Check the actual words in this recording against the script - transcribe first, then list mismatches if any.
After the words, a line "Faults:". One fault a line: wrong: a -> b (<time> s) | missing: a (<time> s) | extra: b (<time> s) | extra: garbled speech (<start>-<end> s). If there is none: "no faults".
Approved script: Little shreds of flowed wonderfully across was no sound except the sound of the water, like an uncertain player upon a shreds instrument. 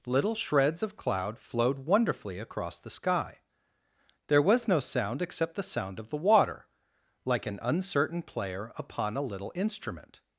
Little shreds of cloud flowed wonderfully across the sky. There was no sound except the sound of the water, like an uncertain player upon a little instrument.
Faults:
extra: cloud (1.0 s)
extra: the sky There (2.8 s)
wrong: shreds -> little (9.2 s)